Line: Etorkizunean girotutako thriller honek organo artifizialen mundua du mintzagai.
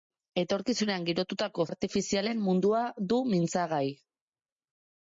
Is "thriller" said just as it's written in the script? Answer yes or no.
no